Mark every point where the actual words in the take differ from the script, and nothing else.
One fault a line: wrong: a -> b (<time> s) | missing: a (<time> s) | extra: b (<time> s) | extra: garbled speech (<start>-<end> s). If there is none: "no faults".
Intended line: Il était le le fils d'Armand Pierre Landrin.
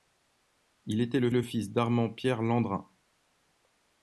no faults